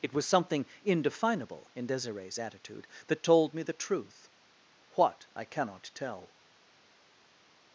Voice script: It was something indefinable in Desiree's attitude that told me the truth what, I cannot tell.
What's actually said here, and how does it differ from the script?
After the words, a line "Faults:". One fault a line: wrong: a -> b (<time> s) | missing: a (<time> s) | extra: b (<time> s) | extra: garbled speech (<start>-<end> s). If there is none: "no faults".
It was something indefinable in Desiree's attitude that told me the truth what, I cannot tell.
Faults:
no faults